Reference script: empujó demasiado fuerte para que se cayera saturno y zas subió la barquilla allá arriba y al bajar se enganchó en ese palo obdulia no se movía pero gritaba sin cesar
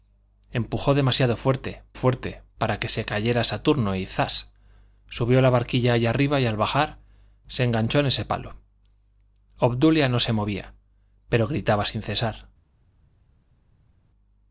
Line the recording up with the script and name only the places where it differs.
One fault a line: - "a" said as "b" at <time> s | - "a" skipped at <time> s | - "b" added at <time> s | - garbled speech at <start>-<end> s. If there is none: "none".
- "fuerte" added at 1.9 s